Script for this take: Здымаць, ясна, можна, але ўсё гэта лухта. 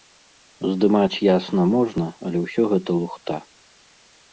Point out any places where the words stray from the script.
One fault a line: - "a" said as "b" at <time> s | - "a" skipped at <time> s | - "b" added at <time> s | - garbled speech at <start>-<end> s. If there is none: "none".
none